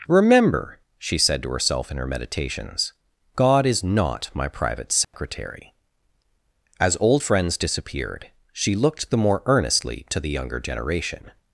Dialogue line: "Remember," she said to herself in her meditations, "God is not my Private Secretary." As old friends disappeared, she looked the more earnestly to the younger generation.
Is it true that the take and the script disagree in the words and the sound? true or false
true